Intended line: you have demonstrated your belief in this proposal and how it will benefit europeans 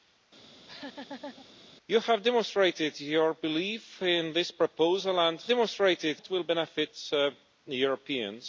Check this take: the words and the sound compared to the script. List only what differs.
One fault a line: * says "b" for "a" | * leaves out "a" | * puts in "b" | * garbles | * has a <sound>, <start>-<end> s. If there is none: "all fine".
* has a laugh, 0.5-1.5 s
* says "demonstrated" for "how"